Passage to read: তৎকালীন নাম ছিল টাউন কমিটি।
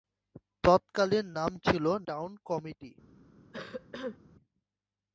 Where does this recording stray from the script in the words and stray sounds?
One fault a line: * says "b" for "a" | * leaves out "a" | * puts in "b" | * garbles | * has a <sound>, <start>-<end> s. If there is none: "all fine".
* has a cough, 3.5-4.2 s